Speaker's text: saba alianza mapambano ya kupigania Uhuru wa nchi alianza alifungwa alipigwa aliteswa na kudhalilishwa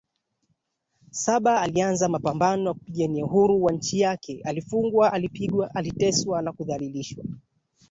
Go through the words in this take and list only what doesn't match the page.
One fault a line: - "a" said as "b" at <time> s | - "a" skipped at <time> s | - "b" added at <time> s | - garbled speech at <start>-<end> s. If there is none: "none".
- "alianza" said as "yake" at 4.0 s